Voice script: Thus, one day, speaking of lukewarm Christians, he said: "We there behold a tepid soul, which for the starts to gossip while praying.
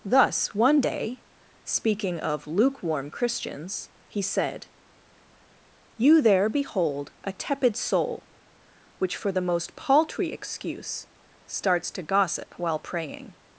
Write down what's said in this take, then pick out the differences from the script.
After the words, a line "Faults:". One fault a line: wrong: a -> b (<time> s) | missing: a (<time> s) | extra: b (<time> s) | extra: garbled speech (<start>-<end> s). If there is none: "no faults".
Thus, one day, speaking of lukewarm Christians, he said: "You there behold a tepid soul, which for the most paltry excuse starts to gossip while praying.
Faults:
wrong: We -> You (6.0 s)
extra: most paltry excuse (9.4 s)